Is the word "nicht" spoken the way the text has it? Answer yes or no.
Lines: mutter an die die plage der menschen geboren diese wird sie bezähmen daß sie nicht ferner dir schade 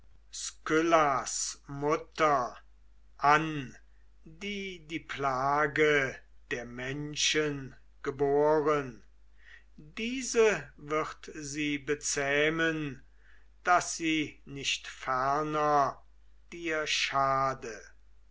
yes